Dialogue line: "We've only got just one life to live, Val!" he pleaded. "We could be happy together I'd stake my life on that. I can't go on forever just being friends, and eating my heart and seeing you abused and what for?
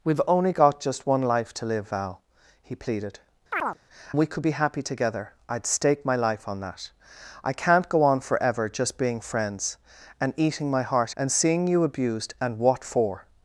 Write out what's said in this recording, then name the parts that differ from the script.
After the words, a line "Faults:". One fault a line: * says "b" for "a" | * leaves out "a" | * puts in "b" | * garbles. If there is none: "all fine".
"We've only got just one life to live, Val!" he pleaded. "We could be happy together I'd stake my life on that. I can't go on forever just being friends, and eating my heart and seeing you abused and what for?
Faults:
all fine